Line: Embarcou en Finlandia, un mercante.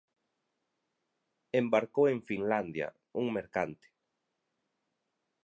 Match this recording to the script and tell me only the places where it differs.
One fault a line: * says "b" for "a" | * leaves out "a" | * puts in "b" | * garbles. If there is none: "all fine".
all fine